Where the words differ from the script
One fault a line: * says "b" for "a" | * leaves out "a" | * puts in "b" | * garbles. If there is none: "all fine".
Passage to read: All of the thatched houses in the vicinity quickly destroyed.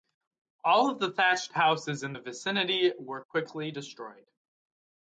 * puts in "were"